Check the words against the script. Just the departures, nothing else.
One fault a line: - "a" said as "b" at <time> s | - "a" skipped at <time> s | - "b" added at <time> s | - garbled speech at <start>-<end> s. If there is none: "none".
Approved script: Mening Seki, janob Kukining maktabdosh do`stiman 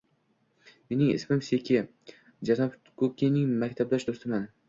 - "ismim" added at 1.1 s